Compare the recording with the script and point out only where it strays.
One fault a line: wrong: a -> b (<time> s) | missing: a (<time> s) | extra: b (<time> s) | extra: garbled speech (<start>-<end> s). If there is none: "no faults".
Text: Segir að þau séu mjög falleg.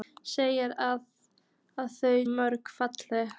missing: séu (2.2 s)